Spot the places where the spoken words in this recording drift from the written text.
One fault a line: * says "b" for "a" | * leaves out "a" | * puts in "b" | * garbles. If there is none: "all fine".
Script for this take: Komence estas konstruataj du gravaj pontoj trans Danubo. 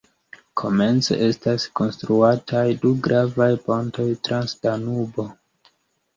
all fine